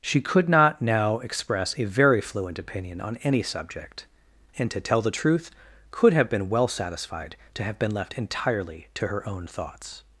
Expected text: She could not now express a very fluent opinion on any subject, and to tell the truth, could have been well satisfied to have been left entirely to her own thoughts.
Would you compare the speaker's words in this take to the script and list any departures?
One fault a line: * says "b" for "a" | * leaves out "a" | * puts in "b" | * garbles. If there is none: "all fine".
all fine